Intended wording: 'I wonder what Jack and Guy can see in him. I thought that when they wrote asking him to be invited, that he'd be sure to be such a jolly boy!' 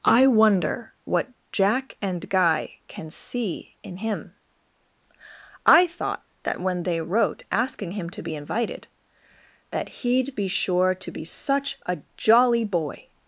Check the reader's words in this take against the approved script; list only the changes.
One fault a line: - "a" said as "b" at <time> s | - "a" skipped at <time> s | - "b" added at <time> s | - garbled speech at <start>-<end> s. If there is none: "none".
none